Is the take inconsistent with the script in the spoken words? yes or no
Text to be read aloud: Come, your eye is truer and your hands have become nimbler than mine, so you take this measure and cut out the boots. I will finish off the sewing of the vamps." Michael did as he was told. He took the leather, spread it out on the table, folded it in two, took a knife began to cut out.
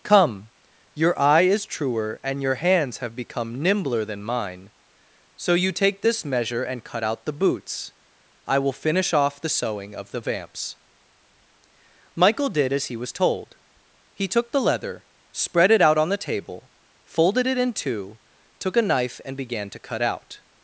yes